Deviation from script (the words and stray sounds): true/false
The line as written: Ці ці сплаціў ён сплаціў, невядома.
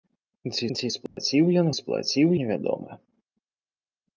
true